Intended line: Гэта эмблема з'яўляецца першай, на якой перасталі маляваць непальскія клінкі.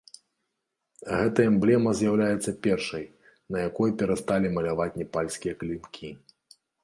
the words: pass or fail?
pass